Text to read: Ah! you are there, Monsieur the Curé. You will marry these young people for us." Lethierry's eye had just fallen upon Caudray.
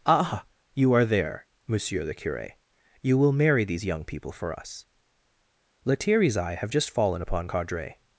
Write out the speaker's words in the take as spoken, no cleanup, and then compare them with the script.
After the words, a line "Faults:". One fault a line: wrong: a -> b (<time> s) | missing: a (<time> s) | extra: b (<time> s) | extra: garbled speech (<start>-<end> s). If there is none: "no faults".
Ah! you are there, Monsieur the Curé. You will marry these young people for us." Lethierry's eye have just fallen upon Caudray.
Faults:
wrong: had -> have (6.5 s)